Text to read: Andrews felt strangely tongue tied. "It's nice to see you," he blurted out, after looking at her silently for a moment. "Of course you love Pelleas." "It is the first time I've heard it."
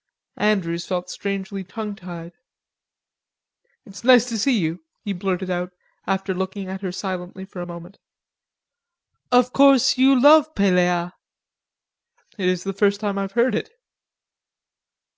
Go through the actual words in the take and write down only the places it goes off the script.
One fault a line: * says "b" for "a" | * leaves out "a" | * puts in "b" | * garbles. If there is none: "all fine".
all fine